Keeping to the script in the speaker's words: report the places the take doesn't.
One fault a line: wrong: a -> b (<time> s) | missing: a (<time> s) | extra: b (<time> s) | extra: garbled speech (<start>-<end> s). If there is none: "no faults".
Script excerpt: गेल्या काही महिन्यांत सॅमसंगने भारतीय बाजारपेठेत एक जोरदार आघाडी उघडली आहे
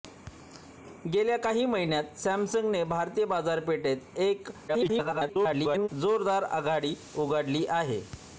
extra: garbled speech (4.7-5.9 s)